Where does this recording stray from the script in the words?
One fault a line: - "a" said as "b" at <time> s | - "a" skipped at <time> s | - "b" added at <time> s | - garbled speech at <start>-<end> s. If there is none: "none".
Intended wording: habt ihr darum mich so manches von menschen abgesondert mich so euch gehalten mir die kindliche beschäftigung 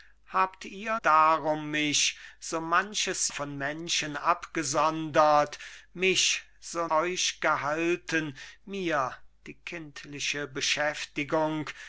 none